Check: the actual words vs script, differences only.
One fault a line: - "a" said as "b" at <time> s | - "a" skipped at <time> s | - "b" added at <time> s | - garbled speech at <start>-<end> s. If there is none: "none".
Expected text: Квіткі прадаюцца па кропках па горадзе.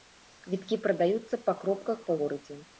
none